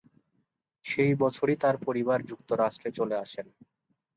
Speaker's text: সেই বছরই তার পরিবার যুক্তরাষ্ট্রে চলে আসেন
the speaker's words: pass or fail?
pass